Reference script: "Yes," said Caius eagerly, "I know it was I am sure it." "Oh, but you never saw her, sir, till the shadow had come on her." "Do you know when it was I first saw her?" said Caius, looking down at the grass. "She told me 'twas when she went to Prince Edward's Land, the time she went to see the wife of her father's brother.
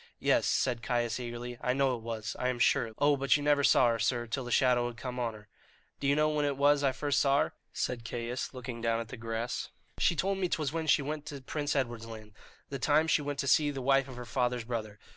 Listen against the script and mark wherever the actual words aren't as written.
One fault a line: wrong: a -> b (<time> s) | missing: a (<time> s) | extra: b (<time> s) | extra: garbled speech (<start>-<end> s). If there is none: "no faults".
no faults